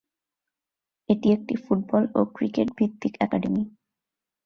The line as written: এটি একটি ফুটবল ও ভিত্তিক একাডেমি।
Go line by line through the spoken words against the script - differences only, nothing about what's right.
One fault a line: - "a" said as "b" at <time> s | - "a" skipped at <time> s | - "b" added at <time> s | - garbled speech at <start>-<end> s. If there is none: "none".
- "ক্রিকেট" added at 2.4 s